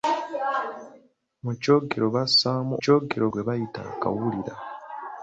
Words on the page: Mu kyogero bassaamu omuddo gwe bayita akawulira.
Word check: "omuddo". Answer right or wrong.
wrong